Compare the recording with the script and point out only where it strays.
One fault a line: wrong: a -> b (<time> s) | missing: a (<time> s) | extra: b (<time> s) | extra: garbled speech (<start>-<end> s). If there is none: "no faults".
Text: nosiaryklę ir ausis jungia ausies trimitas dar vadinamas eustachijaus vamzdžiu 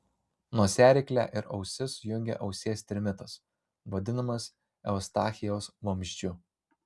missing: dar (3.4 s)